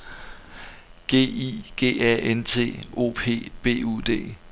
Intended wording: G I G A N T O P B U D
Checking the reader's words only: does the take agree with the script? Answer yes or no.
yes